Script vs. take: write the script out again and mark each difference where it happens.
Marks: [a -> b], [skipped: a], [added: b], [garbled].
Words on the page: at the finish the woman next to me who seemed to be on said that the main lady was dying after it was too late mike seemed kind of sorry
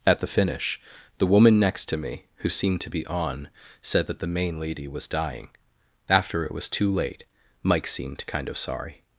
at the finish the woman next to me who seemed to be on said that the main lady was dying after it was too late mike seemed kind of sorry